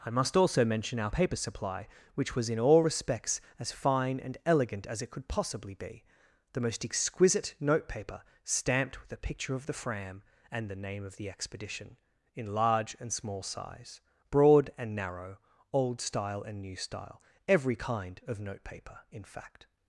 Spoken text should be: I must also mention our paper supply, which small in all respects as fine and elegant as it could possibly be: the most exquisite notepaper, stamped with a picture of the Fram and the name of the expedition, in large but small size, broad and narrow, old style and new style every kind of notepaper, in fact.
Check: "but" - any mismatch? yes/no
yes